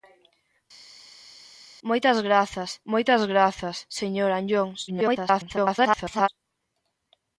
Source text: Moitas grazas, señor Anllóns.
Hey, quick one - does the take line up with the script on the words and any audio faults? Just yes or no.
no